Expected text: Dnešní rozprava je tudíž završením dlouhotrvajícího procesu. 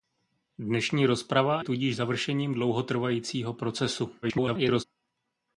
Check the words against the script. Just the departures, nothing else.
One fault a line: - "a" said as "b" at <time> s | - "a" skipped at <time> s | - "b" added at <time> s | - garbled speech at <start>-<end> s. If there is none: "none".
- "je" skipped at 1.6 s
- garbled speech at 4.2-4.8 s